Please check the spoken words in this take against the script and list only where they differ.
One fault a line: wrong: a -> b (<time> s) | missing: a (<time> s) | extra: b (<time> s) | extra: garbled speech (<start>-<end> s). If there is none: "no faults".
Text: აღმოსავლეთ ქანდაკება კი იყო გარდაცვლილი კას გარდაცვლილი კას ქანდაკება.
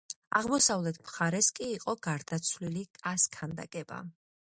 wrong: ქანდაკება -> მხარეს (1.0 s)
missing: გარდაცვლილი კას (3.3 s)